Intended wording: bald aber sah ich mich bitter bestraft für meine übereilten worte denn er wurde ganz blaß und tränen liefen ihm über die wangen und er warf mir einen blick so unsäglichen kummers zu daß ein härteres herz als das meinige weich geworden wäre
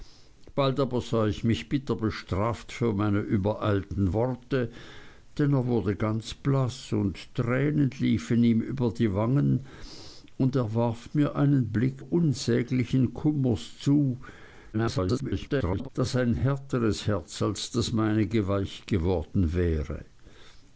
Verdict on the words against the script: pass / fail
fail